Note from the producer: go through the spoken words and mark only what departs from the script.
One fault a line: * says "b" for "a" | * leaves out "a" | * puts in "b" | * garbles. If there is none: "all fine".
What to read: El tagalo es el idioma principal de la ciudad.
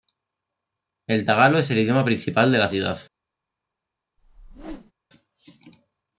all fine